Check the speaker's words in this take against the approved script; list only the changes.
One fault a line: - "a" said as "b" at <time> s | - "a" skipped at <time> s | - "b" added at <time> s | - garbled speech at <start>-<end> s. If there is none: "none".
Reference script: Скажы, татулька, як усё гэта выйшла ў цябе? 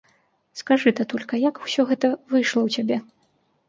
none